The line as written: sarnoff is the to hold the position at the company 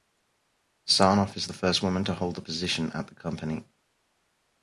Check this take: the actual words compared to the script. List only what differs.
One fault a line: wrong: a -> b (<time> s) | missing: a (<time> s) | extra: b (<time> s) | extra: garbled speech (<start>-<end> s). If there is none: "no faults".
extra: first woman (1.5 s)